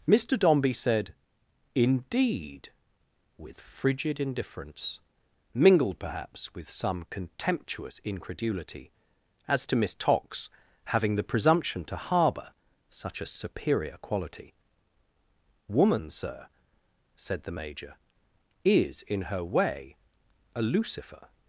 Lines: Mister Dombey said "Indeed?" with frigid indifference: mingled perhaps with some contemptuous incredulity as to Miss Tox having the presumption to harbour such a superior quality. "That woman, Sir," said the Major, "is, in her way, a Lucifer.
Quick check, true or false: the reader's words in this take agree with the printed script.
false